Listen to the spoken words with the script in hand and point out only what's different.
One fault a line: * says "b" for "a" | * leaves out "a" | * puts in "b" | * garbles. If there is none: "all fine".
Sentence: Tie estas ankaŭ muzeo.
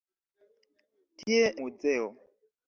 * leaves out "estas ankaŭ"